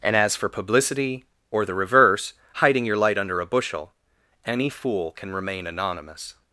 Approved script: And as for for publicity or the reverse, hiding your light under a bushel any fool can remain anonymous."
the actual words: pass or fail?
fail